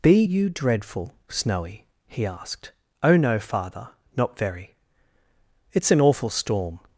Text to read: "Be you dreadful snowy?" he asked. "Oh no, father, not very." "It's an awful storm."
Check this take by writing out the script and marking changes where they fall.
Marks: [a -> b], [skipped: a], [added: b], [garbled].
"Be you dreadful snowy?" he asked. "Oh no, father, not very." "It's an awful storm."